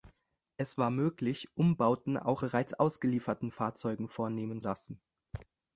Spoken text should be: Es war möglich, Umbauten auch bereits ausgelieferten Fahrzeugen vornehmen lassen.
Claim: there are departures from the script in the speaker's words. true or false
false